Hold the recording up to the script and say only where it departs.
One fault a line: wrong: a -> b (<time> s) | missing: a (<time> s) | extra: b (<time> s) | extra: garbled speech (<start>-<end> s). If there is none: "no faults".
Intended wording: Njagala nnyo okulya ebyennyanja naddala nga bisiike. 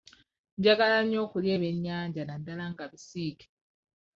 no faults